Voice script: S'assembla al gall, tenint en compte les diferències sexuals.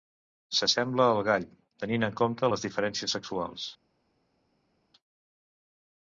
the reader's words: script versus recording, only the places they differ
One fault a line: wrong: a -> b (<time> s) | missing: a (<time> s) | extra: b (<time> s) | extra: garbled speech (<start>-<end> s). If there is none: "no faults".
no faults